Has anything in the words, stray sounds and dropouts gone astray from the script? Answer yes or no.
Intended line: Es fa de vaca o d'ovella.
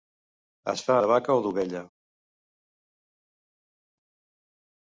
no